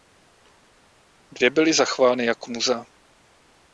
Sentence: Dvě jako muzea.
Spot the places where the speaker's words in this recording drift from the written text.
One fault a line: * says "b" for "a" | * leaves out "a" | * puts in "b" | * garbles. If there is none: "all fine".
* puts in "byly zachovány"